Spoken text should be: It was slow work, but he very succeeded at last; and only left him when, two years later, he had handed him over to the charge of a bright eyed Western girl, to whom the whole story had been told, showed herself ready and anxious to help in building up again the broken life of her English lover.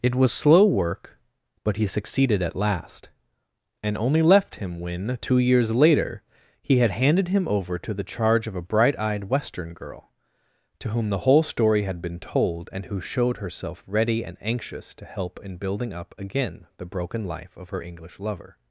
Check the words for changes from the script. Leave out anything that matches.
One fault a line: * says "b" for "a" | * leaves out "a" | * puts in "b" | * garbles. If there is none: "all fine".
* leaves out "very"
* puts in "and who"